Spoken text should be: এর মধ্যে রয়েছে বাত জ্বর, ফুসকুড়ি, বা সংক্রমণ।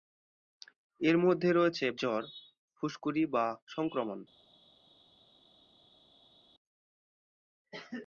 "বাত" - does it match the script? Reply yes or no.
no